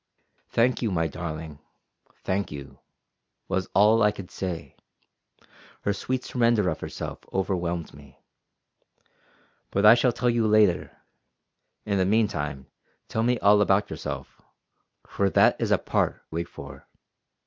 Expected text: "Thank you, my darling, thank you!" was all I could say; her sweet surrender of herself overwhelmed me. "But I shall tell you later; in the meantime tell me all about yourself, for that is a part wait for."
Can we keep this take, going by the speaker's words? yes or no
yes